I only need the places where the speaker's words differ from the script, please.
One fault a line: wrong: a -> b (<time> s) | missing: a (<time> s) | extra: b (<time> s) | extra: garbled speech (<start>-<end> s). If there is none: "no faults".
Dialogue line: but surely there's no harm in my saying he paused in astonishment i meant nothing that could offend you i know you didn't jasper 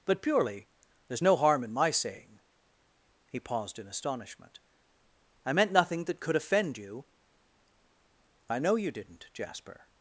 wrong: surely -> purely (0.2 s)